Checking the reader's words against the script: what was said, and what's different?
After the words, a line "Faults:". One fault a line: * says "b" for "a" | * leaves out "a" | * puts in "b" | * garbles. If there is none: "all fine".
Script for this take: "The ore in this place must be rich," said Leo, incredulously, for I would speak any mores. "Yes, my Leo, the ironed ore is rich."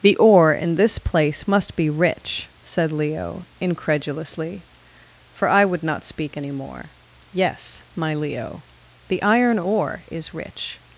"The ore in this place must be rich," said Leo, incredulously, for I would not speak any more. "Yes, my Leo, the iron ore is rich."
Faults:
* puts in "not"
* says "more" for "mores"
* says "iron" for "ironed"